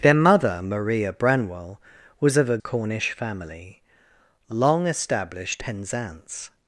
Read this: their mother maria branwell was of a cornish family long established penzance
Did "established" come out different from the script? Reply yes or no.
no